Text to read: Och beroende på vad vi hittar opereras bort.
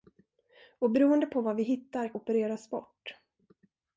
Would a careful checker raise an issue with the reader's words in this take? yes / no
no